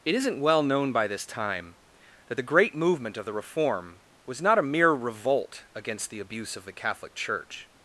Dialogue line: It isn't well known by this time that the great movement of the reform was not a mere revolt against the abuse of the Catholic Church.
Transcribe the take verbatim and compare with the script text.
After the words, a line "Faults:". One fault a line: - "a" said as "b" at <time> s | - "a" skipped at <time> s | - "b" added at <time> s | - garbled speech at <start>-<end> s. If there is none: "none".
It isn't well known by this time that the great movement of the reform was not a mere revolt against the abuse of the Catholic Church.
Faults:
none